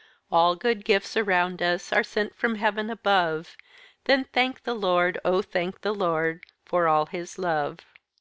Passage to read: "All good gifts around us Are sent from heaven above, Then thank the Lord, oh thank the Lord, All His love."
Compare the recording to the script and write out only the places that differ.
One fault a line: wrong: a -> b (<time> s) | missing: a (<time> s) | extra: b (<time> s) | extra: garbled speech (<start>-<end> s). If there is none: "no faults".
extra: For (6.6 s)